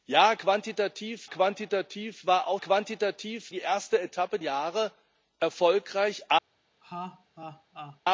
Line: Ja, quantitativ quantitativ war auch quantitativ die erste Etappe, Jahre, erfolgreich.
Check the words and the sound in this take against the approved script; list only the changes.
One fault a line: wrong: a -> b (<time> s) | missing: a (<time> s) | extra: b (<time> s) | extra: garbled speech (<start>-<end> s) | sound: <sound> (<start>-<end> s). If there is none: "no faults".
sound: laugh (6.8-8.0 s)